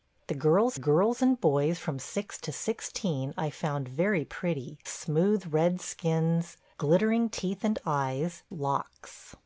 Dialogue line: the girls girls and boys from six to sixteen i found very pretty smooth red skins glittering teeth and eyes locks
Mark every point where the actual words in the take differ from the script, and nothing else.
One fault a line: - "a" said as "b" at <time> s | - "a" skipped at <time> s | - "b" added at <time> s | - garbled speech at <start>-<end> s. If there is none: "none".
none